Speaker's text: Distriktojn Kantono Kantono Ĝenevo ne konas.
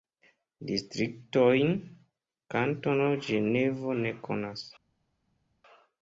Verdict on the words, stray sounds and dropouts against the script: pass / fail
fail